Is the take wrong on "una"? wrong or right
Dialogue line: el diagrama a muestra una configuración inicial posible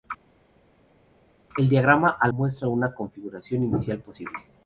right